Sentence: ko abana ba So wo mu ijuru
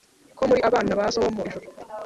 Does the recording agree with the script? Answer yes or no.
no